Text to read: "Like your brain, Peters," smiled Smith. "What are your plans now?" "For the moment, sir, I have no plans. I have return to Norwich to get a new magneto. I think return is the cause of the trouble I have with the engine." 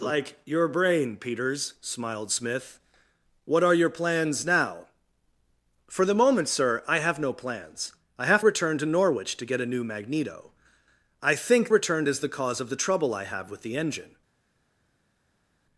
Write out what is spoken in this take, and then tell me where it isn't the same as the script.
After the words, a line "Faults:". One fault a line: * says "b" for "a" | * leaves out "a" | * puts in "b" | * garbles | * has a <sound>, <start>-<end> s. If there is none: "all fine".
"Like your brain, Peters," smiled Smith. "What are your plans now?" "For the moment, sir, I have no plans. I have return to Norwich to get a new magneto. I think return is the cause of the trouble I have with the engine."
Faults:
all fine